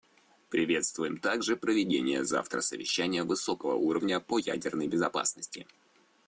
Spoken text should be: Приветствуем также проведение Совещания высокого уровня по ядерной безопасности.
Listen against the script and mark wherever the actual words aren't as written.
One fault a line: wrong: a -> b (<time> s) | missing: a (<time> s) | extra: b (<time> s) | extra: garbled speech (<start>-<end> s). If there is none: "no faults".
extra: завтра (2.2 s)